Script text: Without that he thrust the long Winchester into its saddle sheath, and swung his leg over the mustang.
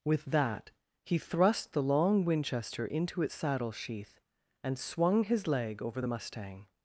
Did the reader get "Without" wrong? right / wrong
wrong